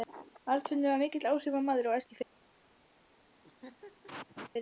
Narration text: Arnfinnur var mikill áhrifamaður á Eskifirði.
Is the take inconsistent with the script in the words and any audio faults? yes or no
yes